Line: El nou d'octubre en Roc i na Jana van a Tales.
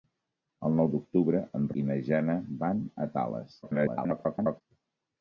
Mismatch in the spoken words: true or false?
true